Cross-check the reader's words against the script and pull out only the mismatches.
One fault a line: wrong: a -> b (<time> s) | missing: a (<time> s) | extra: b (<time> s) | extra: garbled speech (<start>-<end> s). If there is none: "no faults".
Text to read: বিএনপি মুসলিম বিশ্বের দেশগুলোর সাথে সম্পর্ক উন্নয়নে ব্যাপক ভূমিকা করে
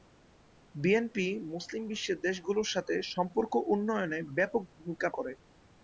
no faults